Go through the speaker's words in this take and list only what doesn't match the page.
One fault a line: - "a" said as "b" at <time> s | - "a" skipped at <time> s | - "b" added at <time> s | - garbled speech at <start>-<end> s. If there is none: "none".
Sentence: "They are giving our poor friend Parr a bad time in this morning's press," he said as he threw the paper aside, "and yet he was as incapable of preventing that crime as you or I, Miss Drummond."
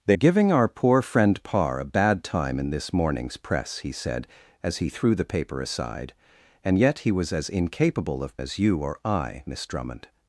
- "are" skipped at 0.2 s
- "preventing that crime" skipped at 8.4 s